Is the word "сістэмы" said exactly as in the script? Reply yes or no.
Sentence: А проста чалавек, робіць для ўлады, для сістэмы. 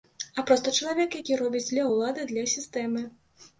yes